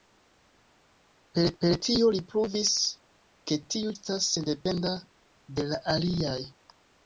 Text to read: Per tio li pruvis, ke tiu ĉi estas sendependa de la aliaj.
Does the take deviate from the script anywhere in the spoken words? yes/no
yes